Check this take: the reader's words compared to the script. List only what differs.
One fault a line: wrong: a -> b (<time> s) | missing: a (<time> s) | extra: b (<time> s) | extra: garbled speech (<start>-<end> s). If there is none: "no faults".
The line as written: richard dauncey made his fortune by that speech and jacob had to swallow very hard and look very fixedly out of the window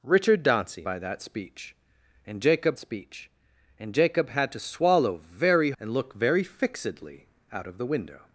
wrong: made his fortune by that -> by that speech and jacob (0.8 s)
missing: hard (5.7 s)